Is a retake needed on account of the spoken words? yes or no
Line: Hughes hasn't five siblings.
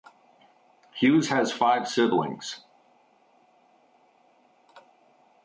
yes